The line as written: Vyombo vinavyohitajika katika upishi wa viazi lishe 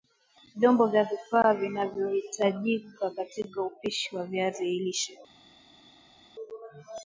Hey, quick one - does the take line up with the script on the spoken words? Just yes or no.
no